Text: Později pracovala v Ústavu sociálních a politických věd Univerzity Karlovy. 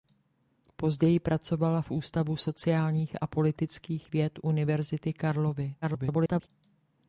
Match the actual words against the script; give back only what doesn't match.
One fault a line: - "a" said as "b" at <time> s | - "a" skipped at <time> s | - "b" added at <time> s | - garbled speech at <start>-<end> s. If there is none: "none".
- garbled speech at 5.8-6.5 s